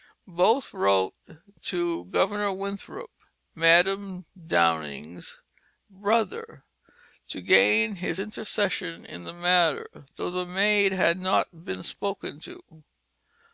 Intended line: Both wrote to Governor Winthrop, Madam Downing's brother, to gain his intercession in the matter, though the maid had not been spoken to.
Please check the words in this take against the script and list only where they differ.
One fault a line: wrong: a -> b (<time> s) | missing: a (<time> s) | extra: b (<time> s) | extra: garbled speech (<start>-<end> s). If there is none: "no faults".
no faults